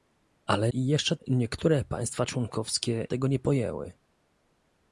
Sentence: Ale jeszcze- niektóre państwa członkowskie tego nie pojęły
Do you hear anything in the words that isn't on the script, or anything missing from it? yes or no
no